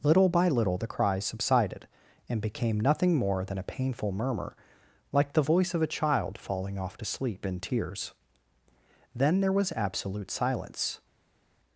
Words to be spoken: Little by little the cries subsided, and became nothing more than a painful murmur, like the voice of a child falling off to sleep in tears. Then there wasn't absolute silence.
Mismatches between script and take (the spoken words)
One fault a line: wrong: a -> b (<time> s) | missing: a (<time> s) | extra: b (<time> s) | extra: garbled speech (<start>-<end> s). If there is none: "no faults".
wrong: wasn't -> was (9.5 s)